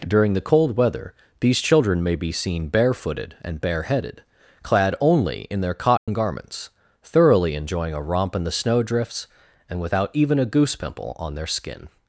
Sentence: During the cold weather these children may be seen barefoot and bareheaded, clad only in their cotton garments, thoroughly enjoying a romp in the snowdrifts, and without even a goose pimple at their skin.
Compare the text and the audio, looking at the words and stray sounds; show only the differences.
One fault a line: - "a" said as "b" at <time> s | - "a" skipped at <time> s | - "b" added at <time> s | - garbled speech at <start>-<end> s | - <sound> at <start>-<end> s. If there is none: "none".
- "barefoot" said as "barefooted" at 2.7 s
- dropout at 6.0-6.1 s
- "at" said as "on" at 11.2 s